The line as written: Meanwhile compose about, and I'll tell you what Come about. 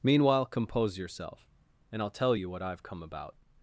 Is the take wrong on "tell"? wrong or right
right